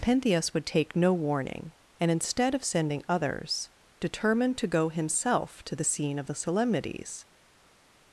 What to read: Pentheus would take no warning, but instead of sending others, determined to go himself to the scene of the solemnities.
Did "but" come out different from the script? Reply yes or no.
yes